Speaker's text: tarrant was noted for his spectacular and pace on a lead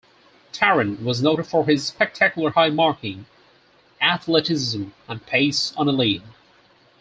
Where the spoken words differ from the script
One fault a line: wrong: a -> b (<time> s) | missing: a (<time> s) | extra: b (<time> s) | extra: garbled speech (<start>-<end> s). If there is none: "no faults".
extra: high marking athleticism (2.5 s)